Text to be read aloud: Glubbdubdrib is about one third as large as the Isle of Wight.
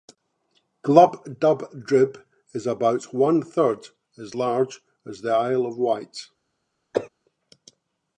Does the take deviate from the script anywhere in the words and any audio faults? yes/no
yes